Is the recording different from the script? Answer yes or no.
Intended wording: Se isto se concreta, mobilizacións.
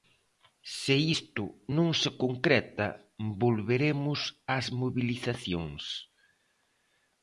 yes